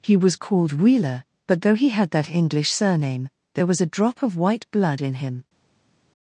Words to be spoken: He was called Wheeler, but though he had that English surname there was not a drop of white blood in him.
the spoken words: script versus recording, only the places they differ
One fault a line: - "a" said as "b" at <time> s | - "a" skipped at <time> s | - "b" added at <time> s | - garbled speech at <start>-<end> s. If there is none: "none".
- "not" skipped at 3.8 s